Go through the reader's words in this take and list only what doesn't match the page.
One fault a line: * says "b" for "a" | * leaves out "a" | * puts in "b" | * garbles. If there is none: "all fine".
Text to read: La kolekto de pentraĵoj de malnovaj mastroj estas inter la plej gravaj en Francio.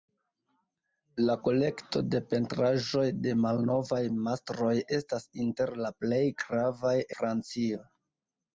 * leaves out "en"